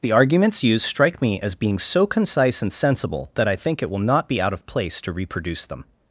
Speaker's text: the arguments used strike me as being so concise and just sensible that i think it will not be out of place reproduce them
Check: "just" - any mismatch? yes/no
yes